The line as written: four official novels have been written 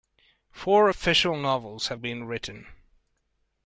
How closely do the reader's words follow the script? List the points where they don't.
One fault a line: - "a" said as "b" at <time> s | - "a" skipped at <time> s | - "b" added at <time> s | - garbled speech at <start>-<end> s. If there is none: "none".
none